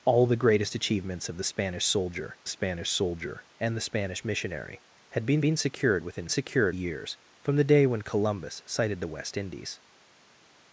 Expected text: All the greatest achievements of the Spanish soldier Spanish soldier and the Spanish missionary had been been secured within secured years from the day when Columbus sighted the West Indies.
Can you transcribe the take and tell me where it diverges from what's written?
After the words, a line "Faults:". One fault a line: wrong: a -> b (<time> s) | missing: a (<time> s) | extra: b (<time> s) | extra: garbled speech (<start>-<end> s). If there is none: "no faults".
All the greatest achievements of the Spanish soldier Spanish soldier and the Spanish missionary had been been secured within secured years from the day when Columbus sighted the West Indies.
Faults:
no faults